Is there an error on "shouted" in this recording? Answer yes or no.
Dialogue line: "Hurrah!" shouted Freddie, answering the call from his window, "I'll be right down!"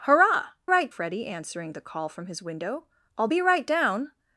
yes